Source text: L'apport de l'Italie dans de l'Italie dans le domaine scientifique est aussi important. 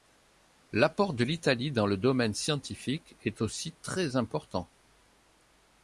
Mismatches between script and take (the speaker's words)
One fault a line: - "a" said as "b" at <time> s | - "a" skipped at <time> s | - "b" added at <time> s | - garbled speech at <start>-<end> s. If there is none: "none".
- "de l'Italie dans" skipped at 1.9 s
- "très" added at 3.8 s